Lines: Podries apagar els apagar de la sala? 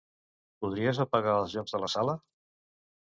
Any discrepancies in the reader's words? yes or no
yes